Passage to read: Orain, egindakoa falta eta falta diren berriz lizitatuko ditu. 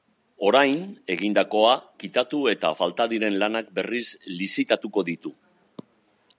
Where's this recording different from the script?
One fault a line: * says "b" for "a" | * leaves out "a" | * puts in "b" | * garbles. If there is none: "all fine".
* says "kitatu" for "falta"
* puts in "lanak"